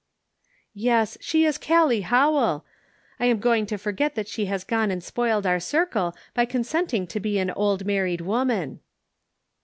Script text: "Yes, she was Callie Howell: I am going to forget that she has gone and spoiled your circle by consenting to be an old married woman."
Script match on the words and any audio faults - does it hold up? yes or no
no